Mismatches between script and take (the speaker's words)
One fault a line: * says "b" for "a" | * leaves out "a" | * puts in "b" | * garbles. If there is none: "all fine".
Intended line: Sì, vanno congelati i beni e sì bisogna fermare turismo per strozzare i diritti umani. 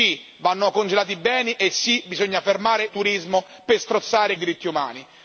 all fine